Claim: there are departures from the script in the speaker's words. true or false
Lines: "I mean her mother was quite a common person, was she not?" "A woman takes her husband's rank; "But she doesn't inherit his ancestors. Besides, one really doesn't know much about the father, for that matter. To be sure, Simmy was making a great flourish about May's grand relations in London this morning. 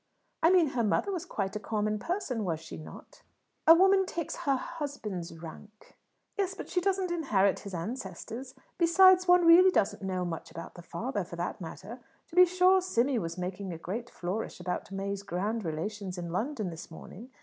true